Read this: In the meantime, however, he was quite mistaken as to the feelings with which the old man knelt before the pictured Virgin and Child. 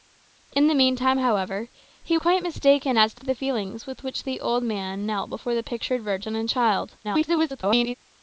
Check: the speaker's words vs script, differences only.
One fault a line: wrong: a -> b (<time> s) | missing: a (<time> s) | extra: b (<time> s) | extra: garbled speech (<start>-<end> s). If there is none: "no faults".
missing: was (2.2 s)
extra: to (3.2 s)
extra: garbled speech (7.0-7.9 s)